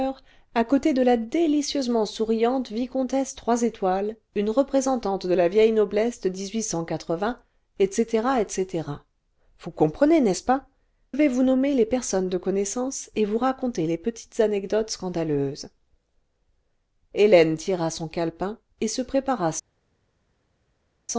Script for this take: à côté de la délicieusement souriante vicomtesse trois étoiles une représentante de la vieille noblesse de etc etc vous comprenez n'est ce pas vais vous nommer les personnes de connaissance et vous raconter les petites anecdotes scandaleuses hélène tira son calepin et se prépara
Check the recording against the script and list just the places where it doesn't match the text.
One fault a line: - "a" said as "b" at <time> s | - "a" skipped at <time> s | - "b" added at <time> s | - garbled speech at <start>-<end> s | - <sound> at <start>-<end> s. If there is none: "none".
none